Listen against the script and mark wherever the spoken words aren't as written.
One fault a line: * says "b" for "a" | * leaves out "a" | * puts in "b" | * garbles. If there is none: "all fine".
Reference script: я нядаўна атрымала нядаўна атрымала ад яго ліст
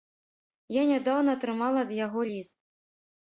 * leaves out "нядаўна атрымала"